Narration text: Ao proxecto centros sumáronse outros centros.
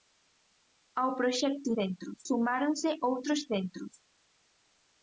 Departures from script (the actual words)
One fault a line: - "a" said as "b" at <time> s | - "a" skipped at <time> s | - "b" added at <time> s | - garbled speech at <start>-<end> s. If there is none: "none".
none